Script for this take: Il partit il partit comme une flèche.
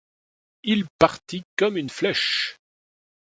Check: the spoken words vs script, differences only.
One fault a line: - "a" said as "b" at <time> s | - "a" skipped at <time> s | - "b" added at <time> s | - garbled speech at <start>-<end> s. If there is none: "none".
- "il partit" skipped at 1.4 s